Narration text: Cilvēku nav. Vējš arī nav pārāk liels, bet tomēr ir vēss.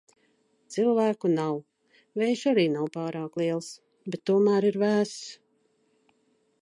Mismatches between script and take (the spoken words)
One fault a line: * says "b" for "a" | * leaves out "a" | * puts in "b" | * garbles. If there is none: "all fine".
all fine